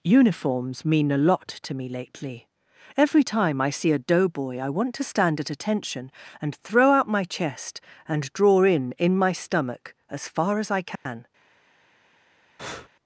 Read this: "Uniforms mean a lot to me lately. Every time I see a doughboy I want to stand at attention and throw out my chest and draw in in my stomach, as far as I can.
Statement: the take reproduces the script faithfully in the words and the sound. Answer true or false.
false